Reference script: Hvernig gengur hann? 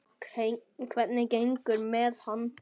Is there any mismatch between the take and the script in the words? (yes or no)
yes